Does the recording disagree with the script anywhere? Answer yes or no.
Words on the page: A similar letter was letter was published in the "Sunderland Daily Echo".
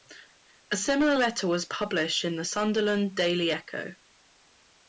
yes